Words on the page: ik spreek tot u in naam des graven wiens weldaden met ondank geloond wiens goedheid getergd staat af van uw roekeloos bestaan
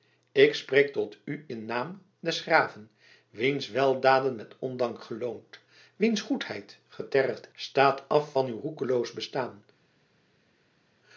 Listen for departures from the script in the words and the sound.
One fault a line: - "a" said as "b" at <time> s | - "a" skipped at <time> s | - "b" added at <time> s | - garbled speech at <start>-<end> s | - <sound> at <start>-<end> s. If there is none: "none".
none